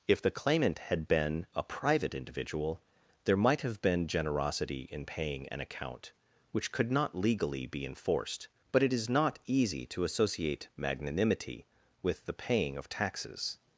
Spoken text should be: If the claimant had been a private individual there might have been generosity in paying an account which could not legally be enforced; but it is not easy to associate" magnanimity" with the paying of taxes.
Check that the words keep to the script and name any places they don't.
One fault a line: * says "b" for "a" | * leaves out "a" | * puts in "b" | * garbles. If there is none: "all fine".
all fine